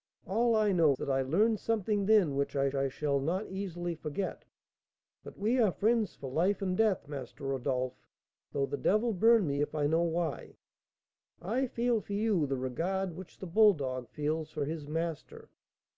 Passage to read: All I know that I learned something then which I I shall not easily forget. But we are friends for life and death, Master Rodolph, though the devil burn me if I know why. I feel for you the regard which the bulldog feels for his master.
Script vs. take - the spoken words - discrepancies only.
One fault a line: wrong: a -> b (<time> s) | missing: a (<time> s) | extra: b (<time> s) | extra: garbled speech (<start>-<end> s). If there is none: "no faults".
no faults